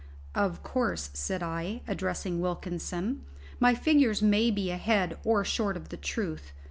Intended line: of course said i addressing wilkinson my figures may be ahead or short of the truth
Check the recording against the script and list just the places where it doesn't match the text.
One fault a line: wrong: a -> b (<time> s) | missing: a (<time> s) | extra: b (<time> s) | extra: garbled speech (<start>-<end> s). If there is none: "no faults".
no faults